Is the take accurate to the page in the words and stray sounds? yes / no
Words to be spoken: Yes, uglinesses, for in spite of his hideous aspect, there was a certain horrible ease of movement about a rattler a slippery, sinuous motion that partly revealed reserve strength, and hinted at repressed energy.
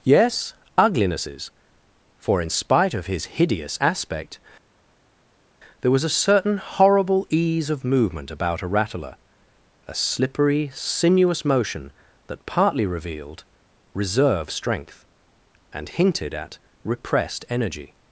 yes